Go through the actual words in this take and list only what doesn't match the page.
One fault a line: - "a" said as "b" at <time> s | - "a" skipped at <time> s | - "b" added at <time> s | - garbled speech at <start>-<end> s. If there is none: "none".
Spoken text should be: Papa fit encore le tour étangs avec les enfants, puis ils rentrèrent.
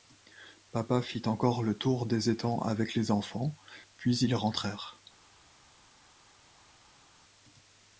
- "des" added at 2.1 s